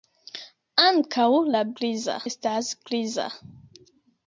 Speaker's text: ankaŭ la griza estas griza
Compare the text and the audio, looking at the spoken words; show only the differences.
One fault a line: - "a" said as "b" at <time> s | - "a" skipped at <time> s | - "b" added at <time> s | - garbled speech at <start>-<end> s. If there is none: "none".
none